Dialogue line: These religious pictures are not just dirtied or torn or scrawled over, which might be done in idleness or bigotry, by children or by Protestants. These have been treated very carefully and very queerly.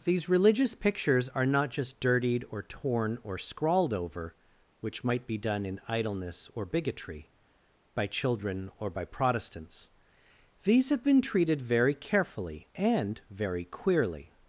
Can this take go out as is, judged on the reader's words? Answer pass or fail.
pass